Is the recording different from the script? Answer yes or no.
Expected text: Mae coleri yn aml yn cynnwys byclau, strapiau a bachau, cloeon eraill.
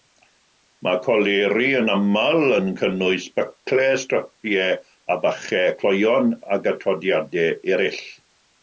yes